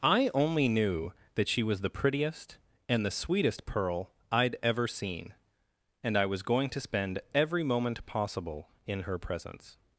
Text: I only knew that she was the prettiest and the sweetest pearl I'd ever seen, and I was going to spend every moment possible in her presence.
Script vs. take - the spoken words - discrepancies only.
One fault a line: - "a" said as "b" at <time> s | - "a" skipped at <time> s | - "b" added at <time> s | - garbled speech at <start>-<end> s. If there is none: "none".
none